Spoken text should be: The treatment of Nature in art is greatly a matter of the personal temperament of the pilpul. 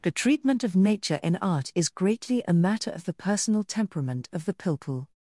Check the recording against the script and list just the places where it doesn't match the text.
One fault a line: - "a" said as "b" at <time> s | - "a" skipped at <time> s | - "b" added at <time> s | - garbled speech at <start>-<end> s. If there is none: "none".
none